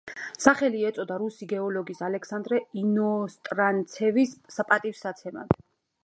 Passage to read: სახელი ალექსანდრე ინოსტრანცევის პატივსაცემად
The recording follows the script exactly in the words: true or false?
false